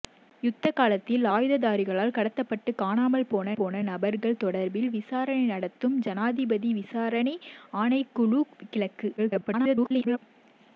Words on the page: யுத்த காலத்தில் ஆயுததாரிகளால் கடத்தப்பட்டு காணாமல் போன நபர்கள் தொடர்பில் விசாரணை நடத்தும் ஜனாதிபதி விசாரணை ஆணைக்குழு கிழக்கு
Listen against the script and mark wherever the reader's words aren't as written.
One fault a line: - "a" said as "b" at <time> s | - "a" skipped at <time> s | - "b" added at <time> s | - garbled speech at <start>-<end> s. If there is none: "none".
- "போன" added at 3.5 s
- garbled speech at 9.2-10.2 s